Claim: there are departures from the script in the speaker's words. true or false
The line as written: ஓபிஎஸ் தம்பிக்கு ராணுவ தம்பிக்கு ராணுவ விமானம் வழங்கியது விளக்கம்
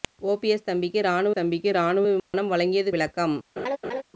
false